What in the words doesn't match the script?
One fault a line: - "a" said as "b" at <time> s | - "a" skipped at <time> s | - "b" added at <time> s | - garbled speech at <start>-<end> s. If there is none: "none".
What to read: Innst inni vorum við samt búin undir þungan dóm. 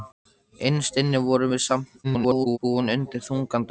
- garbled speech at 2.0-2.6 s